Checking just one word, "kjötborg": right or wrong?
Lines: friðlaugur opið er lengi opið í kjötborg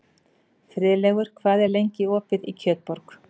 right